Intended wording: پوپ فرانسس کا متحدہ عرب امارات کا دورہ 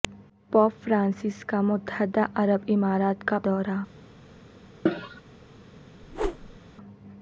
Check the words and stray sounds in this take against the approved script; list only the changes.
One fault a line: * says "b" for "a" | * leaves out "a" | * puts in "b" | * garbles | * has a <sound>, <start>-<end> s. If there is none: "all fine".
* has a cough, 4.9-5.2 s
* has a whoosh, 6.0-6.6 s